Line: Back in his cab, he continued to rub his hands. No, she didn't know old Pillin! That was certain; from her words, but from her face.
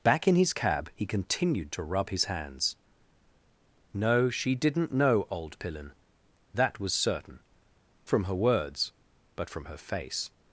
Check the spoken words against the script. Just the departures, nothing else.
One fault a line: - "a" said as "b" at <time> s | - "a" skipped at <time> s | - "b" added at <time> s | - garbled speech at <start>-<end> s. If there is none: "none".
none